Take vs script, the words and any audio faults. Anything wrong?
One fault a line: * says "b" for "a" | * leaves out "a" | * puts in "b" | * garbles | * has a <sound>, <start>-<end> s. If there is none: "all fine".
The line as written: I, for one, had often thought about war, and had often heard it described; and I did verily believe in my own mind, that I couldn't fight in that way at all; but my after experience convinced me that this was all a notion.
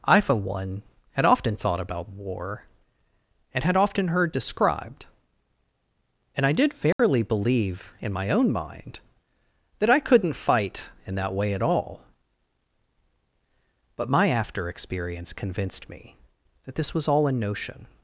* leaves out "it"
* has a dropout, 6.9-7.0 s